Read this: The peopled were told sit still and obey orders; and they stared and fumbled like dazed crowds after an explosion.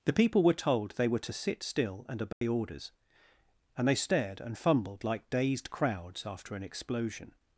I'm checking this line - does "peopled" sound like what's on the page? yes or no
no